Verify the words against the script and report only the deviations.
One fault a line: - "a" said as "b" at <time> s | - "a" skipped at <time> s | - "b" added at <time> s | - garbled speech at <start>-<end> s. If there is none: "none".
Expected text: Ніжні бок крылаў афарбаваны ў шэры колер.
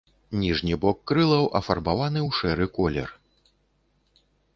none